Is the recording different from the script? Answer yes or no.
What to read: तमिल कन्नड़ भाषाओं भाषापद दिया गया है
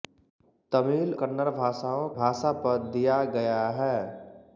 no